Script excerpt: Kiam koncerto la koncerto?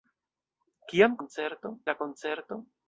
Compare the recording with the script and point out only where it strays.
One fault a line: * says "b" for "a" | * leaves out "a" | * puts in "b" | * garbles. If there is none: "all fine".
all fine